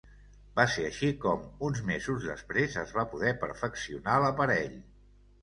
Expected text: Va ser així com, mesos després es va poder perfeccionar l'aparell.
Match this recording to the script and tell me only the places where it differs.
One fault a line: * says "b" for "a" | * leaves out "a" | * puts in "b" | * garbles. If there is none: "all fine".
* puts in "uns"